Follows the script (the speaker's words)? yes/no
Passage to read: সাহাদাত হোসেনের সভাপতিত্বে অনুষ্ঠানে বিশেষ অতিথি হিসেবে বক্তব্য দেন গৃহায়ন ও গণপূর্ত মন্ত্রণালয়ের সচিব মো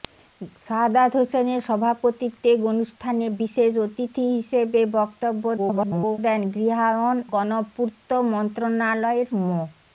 no